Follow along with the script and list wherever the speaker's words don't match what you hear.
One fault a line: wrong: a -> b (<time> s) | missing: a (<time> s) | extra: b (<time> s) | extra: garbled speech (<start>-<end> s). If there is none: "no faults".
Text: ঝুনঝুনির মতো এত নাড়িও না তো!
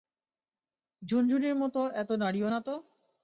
no faults